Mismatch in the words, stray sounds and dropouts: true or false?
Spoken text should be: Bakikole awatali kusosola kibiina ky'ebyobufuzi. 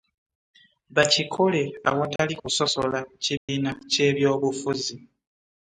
true